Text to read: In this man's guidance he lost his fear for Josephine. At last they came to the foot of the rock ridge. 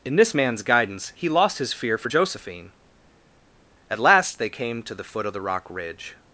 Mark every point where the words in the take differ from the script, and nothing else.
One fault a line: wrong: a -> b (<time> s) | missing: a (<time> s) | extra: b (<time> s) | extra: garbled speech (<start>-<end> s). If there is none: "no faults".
no faults